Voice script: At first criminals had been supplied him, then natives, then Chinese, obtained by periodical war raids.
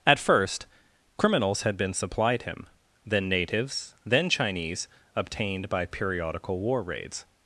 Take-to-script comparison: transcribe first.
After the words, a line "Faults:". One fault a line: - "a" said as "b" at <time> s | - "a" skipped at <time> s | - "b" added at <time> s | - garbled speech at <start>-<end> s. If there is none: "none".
At first criminals had been supplied him, then natives, then Chinese, obtained by periodical war raids.
Faults:
none